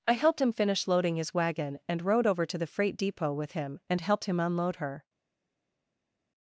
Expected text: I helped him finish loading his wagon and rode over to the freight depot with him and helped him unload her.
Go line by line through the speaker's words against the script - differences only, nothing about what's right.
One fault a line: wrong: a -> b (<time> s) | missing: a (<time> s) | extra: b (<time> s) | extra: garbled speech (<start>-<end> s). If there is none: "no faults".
no faults